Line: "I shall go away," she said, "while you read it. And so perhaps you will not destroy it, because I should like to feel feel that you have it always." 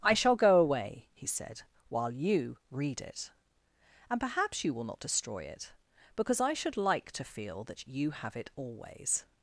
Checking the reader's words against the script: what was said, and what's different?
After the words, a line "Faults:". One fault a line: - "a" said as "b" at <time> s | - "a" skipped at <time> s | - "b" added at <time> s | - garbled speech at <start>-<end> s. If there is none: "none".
"I shall go away," he said, "while you read it. And perhaps you will not destroy it, because I should like to feel that you have it always."
Faults:
- "she" said as "he" at 1.1 s
- "so" skipped at 4.2 s
- "feel" skipped at 7.6 s